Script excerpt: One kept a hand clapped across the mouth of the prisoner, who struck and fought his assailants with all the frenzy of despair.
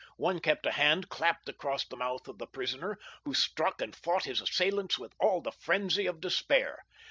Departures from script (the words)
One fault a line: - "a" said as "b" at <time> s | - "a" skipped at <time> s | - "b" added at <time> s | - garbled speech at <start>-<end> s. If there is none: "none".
none